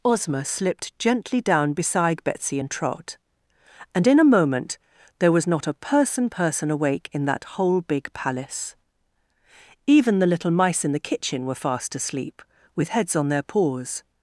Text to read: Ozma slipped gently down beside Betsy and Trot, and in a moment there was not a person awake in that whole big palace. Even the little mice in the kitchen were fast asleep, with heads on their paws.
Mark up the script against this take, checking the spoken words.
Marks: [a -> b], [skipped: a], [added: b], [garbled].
Ozma slipped gently down beside Betsy and Trot, and in a moment there was not a person [added: person] awake in that whole big palace. Even the little mice in the kitchen were fast asleep, with heads on their paws.